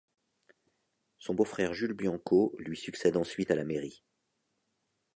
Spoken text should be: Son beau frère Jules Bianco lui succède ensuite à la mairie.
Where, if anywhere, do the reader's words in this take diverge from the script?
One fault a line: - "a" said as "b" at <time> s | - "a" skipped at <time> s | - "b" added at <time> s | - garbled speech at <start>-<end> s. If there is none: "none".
none